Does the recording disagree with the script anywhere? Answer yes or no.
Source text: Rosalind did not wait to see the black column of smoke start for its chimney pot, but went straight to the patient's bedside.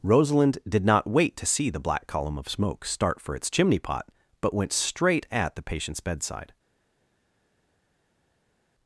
yes